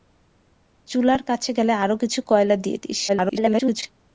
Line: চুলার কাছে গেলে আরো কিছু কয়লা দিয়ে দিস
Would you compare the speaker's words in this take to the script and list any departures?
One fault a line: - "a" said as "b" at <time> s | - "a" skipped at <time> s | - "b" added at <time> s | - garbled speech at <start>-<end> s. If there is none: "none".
- garbled speech at 3.1-3.8 s